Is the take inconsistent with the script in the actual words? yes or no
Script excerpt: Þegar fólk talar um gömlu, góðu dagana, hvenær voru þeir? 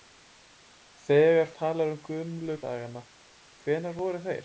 yes